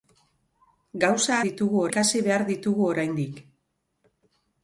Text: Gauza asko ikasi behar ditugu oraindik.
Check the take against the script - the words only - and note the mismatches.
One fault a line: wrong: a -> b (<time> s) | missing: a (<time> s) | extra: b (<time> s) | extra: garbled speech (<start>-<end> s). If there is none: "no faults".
wrong: asko -> ditugu (1.5 s)